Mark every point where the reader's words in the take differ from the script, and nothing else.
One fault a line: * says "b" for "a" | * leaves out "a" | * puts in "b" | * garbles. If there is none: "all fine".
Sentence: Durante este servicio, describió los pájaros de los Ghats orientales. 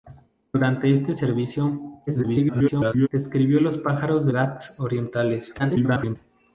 * garbles
* leaves out "los"
* garbles